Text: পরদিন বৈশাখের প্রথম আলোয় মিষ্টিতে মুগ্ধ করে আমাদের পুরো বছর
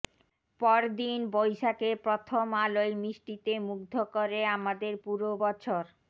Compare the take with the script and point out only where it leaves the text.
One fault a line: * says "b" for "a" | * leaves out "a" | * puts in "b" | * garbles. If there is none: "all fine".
all fine